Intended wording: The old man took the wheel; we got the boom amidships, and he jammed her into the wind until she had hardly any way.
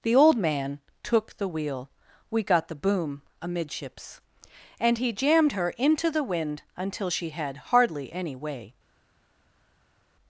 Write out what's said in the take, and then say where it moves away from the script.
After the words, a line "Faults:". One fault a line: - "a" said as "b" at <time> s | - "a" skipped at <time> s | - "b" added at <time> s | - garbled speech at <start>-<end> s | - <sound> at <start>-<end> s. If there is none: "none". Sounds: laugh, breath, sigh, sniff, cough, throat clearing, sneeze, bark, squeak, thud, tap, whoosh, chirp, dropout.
The old man took the wheel; we got the boom amidships, and he jammed her into the wind until she had hardly any way.
Faults:
none